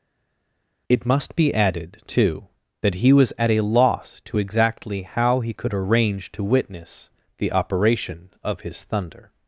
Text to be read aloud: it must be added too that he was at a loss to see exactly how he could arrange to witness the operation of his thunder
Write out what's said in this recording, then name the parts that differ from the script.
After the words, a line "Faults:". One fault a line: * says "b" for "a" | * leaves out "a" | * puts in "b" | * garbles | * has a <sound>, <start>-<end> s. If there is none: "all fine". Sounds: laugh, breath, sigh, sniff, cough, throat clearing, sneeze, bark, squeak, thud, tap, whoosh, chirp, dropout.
it must be added too that he was at a loss to exactly how he could arrange to witness the operation of his thunder
Faults:
* leaves out "see"